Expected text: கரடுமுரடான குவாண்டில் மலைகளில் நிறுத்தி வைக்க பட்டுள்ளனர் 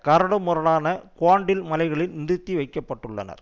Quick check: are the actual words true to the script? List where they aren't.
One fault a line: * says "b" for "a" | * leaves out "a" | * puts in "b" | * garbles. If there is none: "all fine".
all fine